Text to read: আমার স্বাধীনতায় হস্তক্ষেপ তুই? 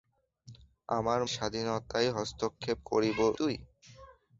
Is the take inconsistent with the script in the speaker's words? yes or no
no